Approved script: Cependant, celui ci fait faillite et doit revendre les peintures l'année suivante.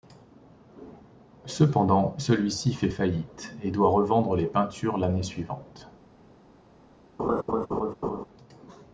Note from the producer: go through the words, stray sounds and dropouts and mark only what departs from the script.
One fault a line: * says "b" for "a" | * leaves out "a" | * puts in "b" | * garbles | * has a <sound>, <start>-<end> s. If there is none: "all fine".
* has a laugh, 7.2-8.3 s